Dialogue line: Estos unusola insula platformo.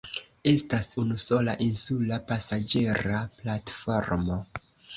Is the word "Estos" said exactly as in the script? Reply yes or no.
no